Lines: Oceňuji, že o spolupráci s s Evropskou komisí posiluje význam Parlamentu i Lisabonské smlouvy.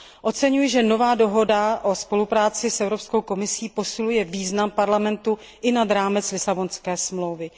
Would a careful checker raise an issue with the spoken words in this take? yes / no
yes